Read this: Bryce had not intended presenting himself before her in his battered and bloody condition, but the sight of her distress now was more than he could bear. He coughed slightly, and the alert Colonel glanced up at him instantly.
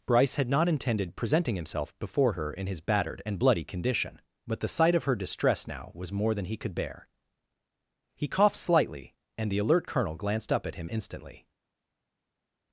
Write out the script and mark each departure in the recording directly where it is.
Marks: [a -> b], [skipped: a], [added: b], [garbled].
Bryce had not intended presenting himself before her in his battered and bloody condition, but the sight of her distress now was more than he could bear. He coughed slightly, and the alert Colonel glanced up at him instantly.